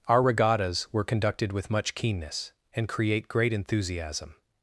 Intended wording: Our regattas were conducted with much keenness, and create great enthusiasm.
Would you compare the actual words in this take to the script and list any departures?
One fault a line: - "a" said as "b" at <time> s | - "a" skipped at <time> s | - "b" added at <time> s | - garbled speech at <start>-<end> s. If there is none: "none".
none